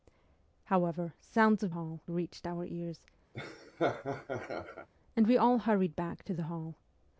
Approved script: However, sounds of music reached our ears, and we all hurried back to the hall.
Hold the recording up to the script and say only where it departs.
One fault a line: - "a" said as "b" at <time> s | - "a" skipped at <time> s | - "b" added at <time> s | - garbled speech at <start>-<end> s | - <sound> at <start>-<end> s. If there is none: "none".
- "music" said as "hall" at 1.7 s
- laugh at 3.3-4.9 s